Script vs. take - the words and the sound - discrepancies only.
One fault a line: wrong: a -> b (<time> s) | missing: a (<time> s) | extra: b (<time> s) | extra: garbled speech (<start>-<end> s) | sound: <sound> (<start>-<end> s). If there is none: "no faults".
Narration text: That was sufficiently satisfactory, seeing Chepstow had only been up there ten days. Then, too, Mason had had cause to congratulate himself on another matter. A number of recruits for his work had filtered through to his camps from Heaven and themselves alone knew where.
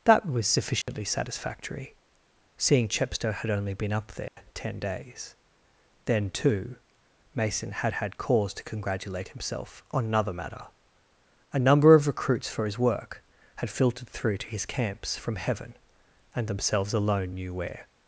sound: dropout (0.8-0.9 s)
sound: dropout (4.3-4.4 s)